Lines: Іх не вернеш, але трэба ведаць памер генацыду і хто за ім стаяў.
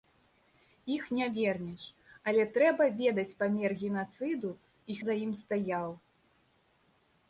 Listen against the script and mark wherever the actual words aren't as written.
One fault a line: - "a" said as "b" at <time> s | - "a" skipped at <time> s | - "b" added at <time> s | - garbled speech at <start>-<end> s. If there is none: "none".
- "хто" skipped at 5.0 s